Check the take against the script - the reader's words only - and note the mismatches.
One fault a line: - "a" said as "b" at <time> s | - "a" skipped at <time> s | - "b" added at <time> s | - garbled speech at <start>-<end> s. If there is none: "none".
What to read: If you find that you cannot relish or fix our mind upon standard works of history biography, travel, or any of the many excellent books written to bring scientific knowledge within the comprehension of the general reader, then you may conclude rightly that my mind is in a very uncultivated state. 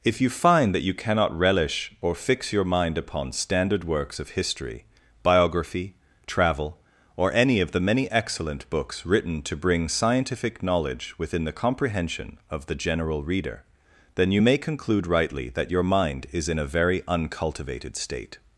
- "our" said as "your" at 2.5 s
- "my" said as "your" at 15.7 s